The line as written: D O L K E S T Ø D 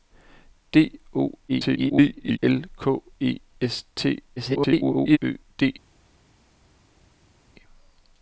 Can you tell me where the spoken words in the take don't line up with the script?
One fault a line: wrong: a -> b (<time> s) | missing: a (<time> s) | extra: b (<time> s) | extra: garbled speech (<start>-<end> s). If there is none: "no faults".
extra: garbled speech (1.5-2.4 s)
extra: garbled speech (4.4-5.2 s)